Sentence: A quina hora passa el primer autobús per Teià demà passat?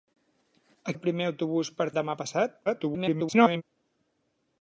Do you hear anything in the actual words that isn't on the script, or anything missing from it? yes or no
yes